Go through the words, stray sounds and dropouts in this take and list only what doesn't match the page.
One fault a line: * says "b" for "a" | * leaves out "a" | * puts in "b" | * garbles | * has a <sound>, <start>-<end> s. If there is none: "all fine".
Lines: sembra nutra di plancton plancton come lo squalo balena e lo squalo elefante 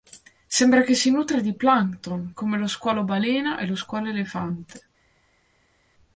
* puts in "che si"
* leaves out "plancton"